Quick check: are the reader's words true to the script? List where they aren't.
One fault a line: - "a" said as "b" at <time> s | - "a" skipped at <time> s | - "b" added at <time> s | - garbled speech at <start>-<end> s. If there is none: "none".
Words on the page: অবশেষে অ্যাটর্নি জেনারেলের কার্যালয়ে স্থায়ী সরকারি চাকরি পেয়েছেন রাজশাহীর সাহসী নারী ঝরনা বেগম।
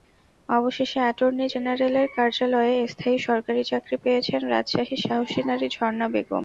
none